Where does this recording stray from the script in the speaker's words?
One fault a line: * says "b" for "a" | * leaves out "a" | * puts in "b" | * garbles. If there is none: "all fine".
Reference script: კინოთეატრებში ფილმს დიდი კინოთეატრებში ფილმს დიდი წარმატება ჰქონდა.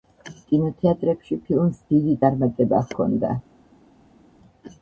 * leaves out "კინოთეატრებში ფილმს დიდი"